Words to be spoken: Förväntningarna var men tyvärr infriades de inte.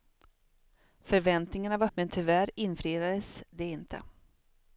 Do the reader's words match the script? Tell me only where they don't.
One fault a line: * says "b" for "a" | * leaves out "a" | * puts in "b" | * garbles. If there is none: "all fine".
all fine